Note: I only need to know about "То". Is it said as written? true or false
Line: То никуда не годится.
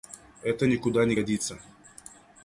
false